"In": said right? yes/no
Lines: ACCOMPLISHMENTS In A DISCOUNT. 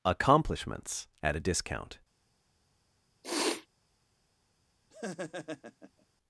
no